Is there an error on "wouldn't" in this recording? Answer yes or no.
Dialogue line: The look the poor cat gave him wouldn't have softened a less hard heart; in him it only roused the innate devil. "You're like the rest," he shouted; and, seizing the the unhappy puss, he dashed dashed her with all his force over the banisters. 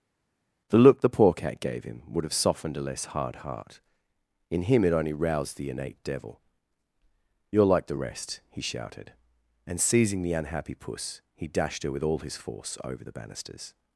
yes